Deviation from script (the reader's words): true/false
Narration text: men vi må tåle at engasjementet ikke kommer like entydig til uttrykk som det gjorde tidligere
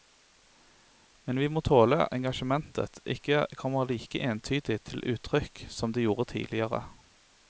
true